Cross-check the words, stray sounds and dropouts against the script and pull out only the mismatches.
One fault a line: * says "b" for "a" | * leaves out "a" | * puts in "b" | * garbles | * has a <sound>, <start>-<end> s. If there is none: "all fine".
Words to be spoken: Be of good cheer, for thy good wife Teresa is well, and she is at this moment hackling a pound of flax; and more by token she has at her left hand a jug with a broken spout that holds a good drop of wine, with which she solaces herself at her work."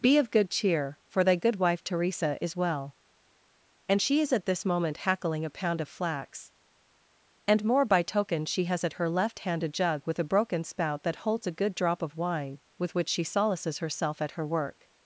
all fine